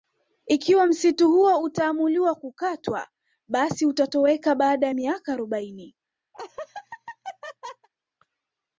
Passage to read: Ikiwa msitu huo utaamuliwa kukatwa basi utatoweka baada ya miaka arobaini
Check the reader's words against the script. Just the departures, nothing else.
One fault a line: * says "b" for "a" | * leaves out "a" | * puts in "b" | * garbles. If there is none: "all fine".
all fine